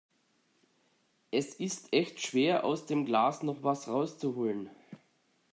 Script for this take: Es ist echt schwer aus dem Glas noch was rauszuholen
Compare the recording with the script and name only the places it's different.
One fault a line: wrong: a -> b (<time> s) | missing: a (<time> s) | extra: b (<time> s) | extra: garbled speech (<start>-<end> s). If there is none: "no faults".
no faults